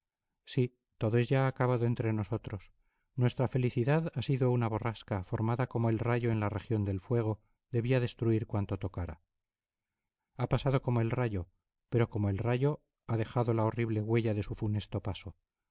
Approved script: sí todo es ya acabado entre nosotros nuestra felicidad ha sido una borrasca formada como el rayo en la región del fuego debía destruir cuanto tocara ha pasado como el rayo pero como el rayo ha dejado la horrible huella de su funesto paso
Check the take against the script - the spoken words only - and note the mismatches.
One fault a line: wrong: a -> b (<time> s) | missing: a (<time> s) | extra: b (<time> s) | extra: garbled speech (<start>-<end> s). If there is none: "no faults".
no faults